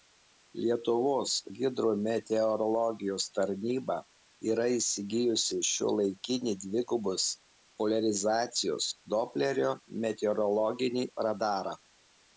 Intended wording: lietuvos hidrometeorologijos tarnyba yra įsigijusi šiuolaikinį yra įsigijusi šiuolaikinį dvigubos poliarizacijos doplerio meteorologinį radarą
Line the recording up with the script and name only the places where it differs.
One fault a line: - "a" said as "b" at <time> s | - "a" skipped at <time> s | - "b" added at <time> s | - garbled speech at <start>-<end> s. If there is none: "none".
- "yra įsigijusi šiuolaikinį" skipped at 6.6 s